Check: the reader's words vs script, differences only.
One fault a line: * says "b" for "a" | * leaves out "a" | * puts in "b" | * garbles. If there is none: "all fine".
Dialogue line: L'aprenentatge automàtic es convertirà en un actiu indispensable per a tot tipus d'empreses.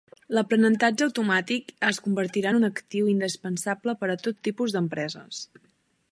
all fine